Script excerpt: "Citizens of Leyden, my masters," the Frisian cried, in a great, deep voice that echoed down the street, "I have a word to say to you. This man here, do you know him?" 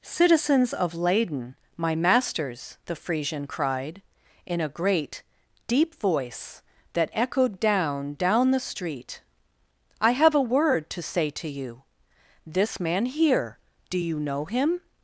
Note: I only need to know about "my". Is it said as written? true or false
true